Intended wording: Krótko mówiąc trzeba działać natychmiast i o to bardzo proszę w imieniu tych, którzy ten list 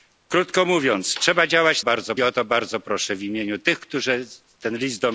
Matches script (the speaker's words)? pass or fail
fail